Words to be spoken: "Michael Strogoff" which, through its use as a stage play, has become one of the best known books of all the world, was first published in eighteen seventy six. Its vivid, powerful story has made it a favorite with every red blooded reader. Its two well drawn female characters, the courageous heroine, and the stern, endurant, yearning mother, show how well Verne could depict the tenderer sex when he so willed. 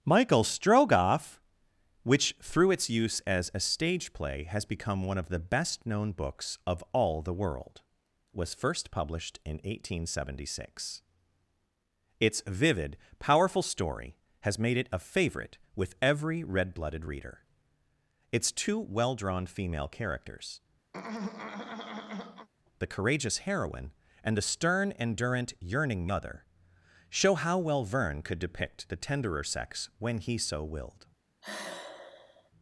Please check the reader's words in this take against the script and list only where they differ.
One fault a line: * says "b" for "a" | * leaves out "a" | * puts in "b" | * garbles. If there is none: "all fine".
all fine